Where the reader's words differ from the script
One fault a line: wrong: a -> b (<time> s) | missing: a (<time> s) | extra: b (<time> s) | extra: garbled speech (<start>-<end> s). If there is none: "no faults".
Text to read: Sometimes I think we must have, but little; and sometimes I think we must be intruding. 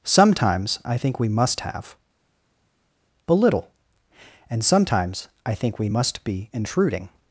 no faults